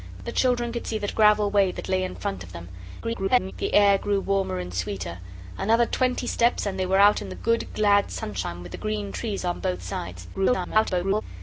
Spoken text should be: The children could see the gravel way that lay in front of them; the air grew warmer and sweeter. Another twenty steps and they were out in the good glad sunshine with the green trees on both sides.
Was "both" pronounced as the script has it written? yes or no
yes